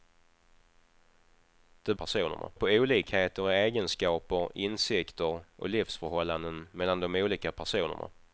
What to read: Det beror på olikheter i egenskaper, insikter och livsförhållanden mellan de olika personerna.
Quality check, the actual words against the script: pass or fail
fail